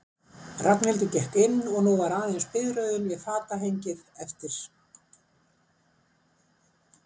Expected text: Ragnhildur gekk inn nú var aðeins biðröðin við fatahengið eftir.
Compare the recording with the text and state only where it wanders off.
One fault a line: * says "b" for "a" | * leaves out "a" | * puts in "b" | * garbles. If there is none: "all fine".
* puts in "og"